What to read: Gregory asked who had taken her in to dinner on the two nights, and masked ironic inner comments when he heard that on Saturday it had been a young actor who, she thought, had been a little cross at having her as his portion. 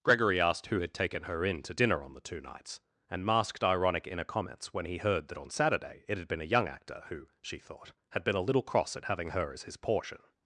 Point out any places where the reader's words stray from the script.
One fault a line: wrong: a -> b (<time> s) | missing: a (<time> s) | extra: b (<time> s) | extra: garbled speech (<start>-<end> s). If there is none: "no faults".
no faults